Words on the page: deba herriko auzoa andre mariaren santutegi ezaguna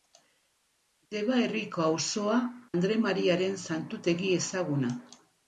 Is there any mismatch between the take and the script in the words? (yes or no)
no